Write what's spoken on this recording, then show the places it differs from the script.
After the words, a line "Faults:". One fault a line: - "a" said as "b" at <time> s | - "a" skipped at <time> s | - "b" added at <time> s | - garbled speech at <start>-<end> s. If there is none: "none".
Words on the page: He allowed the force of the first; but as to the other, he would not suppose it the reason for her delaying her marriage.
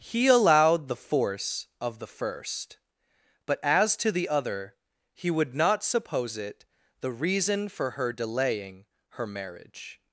He allowed the force of the first; but as to the other, he would not suppose it the reason for her delaying her marriage.
Faults:
none